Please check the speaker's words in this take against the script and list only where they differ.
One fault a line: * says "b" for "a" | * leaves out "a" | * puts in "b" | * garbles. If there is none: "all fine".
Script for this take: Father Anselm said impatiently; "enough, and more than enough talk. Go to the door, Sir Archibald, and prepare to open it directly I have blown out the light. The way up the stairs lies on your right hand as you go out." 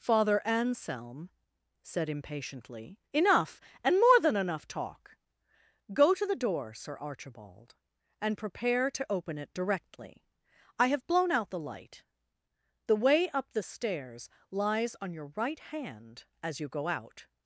all fine